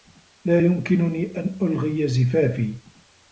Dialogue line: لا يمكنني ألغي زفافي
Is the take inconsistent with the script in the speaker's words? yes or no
yes